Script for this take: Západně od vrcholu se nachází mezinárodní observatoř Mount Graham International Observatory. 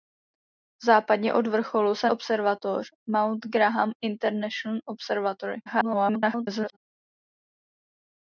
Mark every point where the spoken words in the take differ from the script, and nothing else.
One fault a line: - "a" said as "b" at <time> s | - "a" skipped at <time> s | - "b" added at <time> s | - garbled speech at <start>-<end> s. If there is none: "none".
- "nachází mezinárodní" skipped at 2.1 s
- garbled speech at 5.7-6.8 s